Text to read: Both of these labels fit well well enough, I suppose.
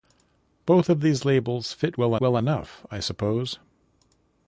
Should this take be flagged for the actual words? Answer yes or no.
no